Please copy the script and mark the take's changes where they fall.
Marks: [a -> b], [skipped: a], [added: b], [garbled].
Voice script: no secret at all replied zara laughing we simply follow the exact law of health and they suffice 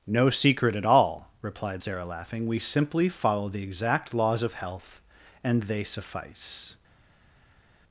no secret at all replied zara laughing we simply follow the exact [law -> laws] of health and they suffice